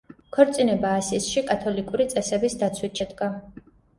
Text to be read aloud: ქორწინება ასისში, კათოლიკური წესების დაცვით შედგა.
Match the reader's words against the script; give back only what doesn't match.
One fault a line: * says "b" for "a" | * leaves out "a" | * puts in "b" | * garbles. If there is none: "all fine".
all fine